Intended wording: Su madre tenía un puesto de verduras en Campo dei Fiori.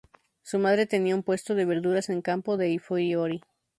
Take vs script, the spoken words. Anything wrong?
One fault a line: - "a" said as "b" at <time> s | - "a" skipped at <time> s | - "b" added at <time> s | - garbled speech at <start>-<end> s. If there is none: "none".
none